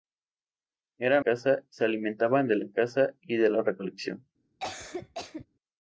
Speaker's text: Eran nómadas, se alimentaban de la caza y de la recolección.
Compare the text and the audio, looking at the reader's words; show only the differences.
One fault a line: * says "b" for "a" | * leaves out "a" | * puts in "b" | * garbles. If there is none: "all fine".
* says "caza" for "nómadas"